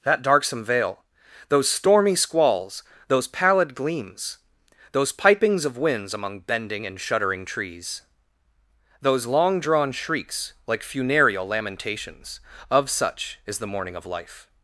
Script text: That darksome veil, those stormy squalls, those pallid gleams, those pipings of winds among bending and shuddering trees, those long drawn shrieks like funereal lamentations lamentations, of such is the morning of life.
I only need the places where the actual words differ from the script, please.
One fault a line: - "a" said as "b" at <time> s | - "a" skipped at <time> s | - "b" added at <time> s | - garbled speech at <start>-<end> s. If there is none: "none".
- "lamentations" skipped at 12.4 s